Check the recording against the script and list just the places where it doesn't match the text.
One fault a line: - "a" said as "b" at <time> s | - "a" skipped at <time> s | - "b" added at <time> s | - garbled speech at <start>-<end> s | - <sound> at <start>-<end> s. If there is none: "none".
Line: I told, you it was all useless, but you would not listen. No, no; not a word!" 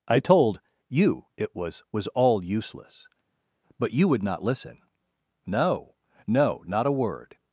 - "was" added at 1.9 s